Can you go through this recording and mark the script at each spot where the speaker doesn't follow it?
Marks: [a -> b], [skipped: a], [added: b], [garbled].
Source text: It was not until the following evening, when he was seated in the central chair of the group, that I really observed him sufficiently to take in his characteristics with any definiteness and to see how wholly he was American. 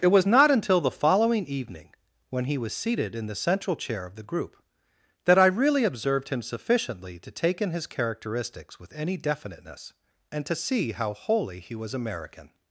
It was not until the following evening, when he was seated in the central chair of the group, that I really observed him sufficiently to take in his characteristics with any definiteness and to see how wholly he was American.